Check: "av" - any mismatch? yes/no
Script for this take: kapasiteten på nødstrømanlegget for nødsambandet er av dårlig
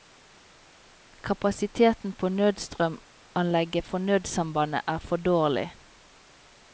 yes